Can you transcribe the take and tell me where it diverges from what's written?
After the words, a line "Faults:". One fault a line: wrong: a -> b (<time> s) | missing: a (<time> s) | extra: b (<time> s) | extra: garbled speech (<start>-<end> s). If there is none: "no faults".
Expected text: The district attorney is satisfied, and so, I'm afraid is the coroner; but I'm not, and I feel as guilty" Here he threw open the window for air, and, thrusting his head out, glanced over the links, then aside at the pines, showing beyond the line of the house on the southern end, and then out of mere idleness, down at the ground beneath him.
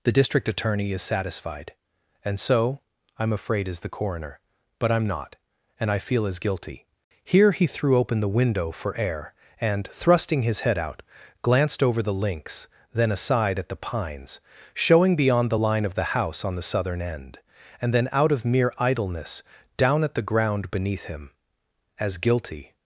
The district attorney is satisfied, and so, I'm afraid is the coroner; but I'm not, and I feel as guilty" Here he threw open the window for air, and, thrusting his head out, glanced over the links, then aside at the pines, showing beyond the line of the house on the southern end, and then out of mere idleness, down at the ground beneath him. "As guilty
Faults:
extra: As guilty (22.0 s)